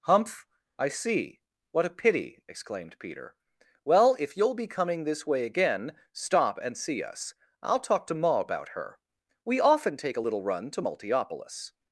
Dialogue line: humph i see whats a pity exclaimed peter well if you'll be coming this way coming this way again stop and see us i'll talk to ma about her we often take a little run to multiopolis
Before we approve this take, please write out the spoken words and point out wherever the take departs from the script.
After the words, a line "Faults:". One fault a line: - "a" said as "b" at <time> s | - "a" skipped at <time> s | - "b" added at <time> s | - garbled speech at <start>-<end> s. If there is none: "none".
humph i see what a pity exclaimed peter well if you'll be coming this way again stop and see us i'll talk to ma about her we often take a little run to multiopolis
Faults:
- "whats" said as "what" at 1.7 s
- "coming this way" skipped at 5.5 s